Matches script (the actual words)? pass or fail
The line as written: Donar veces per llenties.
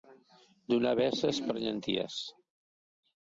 pass